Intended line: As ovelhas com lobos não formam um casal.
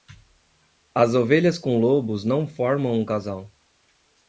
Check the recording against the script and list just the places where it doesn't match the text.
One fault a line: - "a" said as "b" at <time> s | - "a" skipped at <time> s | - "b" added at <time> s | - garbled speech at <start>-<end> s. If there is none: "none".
none